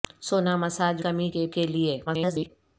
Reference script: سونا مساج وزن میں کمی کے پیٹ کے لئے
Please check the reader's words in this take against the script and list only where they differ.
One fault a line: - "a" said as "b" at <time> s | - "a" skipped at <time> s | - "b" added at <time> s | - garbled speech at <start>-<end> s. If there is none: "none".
- "وزن میں" skipped at 1.0 s
- "پیٹ" skipped at 1.5 s
- garbled speech at 2.1-2.5 s